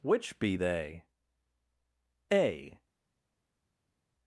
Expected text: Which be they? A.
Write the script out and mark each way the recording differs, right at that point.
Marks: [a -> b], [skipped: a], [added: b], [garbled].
Which be they? A.